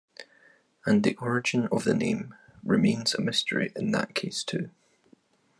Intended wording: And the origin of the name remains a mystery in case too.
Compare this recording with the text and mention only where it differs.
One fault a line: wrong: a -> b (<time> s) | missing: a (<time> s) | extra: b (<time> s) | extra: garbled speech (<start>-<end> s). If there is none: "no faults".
extra: that (3.9 s)